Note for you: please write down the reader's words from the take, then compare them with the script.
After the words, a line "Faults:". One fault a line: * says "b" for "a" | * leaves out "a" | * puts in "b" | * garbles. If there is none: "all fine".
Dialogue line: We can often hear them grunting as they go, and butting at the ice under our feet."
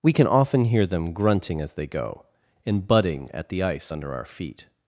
We can often hear them grunting as they go, and butting at the ice under our feet."
Faults:
all fine